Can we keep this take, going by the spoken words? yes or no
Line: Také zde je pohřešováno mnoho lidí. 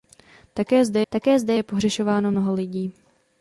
no